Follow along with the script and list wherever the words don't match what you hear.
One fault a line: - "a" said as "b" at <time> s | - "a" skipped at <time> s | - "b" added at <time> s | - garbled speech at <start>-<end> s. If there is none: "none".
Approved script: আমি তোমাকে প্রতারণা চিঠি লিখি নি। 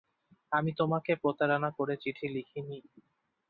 - "করে" added at 1.8 s